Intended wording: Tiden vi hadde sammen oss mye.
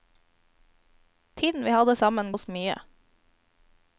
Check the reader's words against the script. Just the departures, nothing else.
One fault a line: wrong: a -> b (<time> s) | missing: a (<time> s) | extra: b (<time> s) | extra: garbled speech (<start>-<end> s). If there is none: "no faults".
no faults